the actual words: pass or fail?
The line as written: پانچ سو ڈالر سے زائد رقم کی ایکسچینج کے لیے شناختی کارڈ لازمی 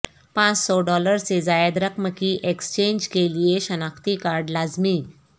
pass